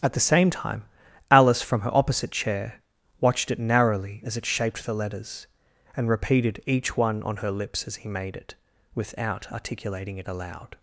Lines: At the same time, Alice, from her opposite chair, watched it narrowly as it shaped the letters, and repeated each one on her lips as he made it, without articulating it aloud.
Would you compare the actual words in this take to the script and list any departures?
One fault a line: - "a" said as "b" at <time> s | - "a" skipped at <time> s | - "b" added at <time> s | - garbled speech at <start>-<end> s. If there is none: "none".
none